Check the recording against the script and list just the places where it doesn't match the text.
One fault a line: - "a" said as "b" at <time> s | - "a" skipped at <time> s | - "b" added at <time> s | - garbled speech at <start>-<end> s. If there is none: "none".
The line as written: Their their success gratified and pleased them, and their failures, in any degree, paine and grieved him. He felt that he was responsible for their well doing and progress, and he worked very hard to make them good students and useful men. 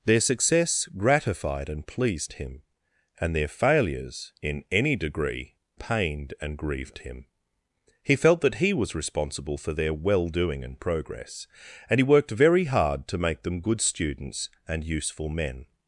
- "their" skipped at 0.2 s
- "them" said as "him" at 2.3 s
- "paine" said as "pained" at 5.8 s